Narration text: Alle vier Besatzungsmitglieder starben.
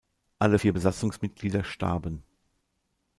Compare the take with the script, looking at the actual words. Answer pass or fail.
pass